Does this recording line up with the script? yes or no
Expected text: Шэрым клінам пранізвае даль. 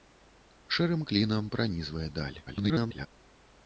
no